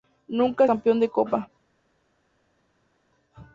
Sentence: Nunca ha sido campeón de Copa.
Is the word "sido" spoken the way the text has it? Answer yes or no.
no